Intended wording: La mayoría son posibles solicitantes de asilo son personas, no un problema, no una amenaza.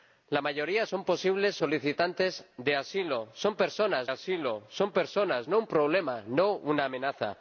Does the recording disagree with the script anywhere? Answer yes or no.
yes